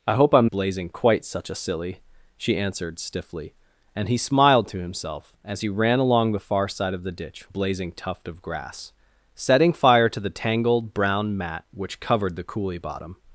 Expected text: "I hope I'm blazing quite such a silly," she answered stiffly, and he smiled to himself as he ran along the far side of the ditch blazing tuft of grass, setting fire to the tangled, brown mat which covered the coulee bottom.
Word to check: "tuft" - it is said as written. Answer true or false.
true